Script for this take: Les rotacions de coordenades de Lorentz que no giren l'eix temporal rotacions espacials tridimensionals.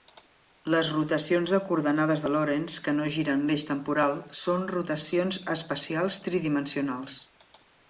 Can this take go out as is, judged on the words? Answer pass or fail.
fail